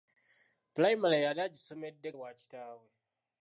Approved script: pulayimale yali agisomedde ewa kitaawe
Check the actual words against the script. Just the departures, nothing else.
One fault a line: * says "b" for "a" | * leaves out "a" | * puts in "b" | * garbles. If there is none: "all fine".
all fine